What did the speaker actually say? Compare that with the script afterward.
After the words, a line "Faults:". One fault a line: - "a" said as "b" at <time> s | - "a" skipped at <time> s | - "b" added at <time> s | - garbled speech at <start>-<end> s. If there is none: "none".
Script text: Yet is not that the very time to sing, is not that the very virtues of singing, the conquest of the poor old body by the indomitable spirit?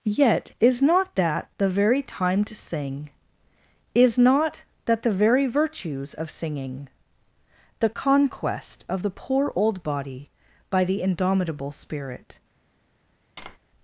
Yet is not that the very time to sing, is not that the very virtues of singing, the conquest of the poor old body by the indomitable spirit?
Faults:
none